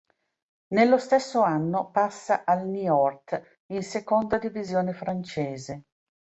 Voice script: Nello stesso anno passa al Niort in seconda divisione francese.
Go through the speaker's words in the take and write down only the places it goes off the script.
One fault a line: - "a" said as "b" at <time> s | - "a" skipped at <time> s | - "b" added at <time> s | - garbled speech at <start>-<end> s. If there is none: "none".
none